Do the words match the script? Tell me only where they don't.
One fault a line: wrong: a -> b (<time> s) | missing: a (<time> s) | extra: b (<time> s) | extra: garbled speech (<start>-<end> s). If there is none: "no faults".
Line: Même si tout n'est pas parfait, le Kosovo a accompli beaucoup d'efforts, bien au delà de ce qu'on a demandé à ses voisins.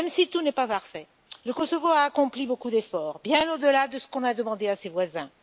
no faults